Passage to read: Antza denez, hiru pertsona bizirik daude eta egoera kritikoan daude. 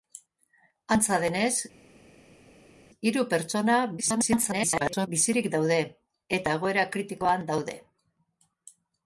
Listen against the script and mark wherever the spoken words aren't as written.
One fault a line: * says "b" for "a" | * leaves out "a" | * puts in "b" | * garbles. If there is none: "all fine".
* garbles